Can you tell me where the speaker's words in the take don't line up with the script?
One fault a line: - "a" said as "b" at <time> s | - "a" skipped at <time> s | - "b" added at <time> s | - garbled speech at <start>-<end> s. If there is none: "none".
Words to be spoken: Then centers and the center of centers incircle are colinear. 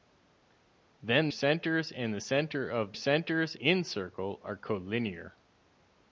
none